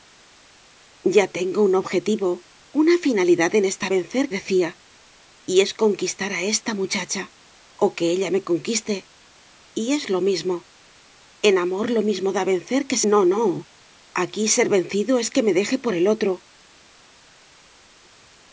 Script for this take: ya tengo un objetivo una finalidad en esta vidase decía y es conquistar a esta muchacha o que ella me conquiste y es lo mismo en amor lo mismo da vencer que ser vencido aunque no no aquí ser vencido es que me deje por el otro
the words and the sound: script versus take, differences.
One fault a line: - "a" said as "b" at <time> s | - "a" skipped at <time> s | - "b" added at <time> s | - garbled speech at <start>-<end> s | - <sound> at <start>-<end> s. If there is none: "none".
- "vidase" said as "vencer" at 4.0 s
- "ser vencido aunque" skipped at 13.0 s